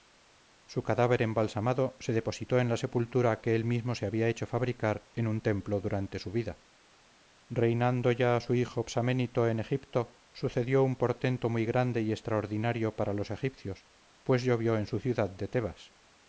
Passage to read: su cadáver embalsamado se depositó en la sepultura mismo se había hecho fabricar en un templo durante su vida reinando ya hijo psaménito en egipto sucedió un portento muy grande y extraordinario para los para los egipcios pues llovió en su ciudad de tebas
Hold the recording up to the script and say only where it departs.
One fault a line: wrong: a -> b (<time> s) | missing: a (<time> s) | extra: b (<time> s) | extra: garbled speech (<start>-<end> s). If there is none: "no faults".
extra: que él (3.4 s)
extra: su (8.4 s)
missing: para los (13.3 s)